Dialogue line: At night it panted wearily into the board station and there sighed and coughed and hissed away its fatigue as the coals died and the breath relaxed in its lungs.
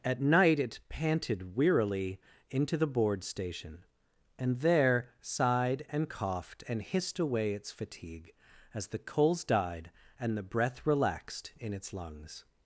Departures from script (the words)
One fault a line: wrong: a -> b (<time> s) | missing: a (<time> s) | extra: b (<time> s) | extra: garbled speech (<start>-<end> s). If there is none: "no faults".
no faults